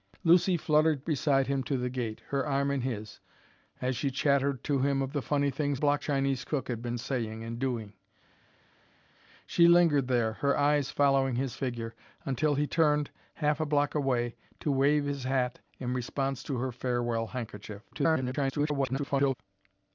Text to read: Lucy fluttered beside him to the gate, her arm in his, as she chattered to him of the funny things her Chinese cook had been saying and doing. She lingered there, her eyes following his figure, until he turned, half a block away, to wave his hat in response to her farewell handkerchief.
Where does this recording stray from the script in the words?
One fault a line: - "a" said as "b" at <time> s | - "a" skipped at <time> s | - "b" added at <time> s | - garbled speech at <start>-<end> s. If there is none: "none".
- "her" said as "block" at 5.7 s
- garbled speech at 17.9-19.3 s